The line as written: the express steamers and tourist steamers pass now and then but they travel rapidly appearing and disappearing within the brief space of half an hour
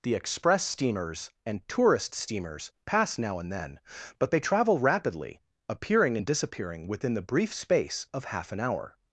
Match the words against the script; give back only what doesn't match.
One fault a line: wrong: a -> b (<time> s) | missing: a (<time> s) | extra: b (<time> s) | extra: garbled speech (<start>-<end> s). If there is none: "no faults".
no faults